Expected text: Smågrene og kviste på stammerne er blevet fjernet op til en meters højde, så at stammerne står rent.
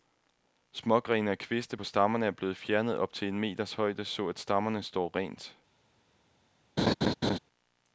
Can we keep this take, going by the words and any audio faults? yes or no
no